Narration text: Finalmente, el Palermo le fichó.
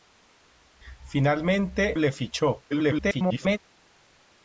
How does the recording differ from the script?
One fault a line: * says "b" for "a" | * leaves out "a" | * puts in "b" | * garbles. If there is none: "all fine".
* leaves out "el Palermo"
* garbles